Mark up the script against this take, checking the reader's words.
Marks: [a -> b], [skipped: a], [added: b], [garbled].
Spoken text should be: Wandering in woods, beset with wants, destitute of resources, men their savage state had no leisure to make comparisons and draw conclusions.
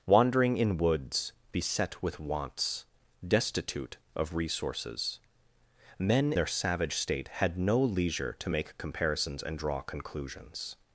Wandering in woods, beset with wants, destitute of resources, men their savage state had no leisure to make comparisons and draw conclusions.